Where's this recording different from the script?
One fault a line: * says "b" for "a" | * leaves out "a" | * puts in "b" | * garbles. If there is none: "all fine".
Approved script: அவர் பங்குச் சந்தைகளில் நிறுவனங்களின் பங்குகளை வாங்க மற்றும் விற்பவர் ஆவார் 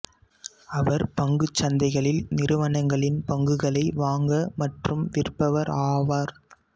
all fine